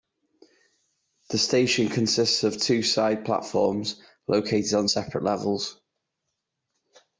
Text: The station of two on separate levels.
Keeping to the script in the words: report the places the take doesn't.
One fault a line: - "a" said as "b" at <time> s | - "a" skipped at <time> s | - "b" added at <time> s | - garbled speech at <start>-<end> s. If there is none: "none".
- "consists" added at 1.9 s
- "side platforms located" added at 2.8 s